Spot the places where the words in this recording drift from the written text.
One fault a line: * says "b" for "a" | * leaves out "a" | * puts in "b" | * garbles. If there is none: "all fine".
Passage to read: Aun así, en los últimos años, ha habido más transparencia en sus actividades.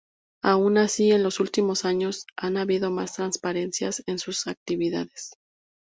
all fine